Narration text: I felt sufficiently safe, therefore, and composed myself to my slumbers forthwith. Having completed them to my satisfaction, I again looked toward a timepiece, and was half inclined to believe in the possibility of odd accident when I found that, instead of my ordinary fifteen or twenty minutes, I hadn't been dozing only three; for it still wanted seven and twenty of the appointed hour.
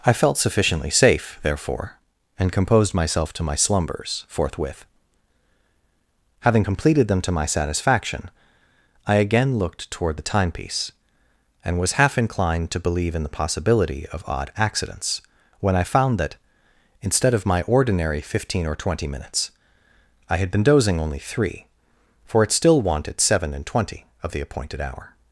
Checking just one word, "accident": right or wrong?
wrong